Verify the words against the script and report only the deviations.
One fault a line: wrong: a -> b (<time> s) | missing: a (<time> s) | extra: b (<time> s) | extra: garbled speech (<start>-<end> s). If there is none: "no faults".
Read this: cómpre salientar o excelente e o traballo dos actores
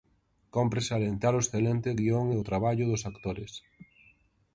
extra: guión (2.0 s)